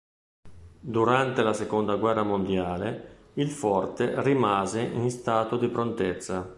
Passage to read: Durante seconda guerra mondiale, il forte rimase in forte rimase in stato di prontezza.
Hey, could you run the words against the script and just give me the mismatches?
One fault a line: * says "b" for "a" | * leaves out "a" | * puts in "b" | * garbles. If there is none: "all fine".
* puts in "la"
* leaves out "forte rimase in"